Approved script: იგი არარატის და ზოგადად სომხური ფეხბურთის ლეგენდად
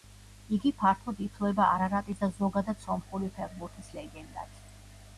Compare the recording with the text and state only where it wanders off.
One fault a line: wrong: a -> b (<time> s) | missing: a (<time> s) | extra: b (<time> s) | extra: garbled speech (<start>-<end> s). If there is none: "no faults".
extra: ფართოდ ითვლება (0.8 s)